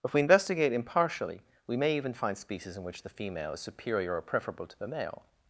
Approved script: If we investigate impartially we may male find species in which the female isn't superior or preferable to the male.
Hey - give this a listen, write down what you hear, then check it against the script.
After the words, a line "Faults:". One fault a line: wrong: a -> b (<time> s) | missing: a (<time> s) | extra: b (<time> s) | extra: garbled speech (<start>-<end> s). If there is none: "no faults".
If we investigate impartially we may even find species in which the female is superior or preferable to the male.
Faults:
wrong: male -> even (1.9 s)
wrong: isn't -> is (3.5 s)